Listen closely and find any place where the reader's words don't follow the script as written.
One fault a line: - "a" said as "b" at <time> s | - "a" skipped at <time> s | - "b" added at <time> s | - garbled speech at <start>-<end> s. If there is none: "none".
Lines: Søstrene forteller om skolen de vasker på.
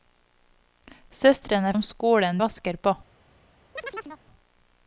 - "forteller" skipped at 1.7 s
- "de" skipped at 2.4 s